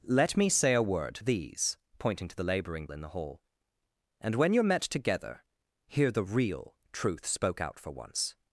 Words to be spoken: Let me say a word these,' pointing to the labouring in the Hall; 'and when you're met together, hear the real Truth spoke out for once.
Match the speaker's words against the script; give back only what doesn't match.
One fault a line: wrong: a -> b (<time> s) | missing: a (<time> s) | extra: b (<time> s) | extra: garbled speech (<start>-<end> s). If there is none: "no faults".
no faults